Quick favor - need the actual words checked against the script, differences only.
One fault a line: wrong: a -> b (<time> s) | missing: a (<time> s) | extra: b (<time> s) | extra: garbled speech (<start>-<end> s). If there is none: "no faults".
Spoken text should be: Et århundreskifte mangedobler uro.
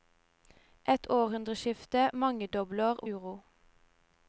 no faults